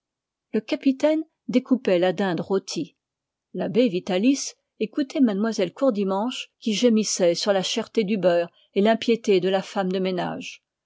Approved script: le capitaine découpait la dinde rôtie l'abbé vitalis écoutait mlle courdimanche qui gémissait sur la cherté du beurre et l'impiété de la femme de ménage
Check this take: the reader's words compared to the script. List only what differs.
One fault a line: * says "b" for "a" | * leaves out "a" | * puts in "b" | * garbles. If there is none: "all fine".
all fine